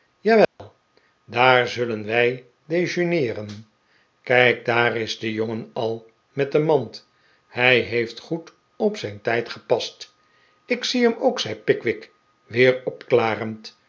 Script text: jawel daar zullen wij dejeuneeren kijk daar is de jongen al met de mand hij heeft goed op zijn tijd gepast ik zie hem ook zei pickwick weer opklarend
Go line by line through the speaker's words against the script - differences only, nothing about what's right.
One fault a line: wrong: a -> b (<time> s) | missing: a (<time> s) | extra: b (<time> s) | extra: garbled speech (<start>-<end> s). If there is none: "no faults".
no faults